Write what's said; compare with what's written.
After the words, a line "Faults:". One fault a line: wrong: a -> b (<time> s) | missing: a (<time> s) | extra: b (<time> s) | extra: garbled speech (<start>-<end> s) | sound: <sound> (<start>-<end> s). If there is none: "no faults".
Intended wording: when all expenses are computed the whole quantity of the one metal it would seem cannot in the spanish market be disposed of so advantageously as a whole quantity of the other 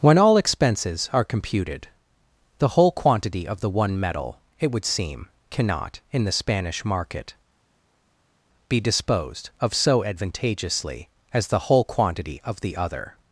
when all expenses are computed the whole quantity of the one metal it would seem cannot in the spanish market be disposed of so advantageously as the whole quantity of the other
Faults:
wrong: a -> the (11.5 s)